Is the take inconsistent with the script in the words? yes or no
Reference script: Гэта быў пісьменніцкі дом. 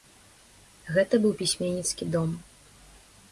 no